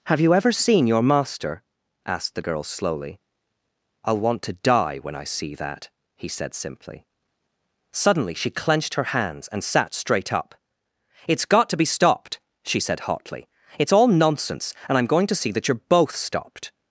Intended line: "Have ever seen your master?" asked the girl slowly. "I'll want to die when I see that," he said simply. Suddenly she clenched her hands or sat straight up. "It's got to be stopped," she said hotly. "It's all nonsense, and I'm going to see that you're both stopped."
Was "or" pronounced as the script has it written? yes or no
no